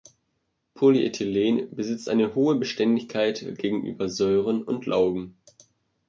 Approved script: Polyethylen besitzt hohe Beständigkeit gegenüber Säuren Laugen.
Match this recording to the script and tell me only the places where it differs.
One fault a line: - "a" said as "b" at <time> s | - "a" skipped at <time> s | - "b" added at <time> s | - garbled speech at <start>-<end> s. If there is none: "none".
- "eine" added at 2.1 s
- "und" added at 4.6 s